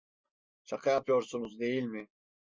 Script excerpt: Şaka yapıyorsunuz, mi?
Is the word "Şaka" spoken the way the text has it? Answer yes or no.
yes